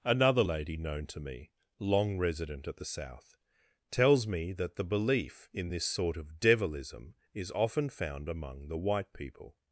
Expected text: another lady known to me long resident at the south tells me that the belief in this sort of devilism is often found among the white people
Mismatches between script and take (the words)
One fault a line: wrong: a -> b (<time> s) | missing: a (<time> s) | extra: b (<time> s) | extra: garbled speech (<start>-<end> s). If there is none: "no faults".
no faults